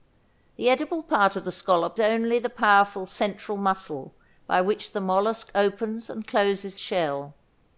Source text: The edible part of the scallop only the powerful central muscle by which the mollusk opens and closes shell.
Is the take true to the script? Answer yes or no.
yes